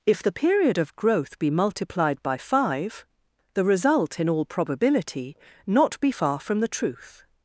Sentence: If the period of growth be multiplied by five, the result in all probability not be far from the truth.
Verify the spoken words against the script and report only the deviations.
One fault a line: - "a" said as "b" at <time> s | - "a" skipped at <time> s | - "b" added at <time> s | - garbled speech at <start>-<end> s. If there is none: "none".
none